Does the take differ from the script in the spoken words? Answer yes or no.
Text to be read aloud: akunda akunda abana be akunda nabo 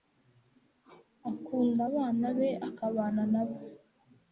yes